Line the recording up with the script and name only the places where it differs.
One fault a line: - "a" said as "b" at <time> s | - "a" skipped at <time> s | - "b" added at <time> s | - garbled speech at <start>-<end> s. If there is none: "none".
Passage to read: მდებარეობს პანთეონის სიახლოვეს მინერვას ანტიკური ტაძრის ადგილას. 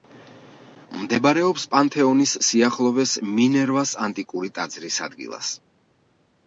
none